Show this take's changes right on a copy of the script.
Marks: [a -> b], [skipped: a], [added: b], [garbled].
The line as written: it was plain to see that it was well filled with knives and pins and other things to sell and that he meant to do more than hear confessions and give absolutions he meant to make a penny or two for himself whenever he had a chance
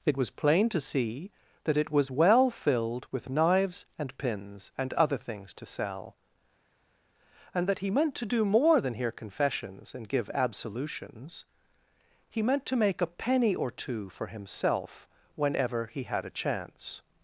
it was plain to see that it was well filled with knives and pins and other things to sell and that he meant to do more than hear confessions and give absolutions he meant to make a penny or two for himself whenever he had a chance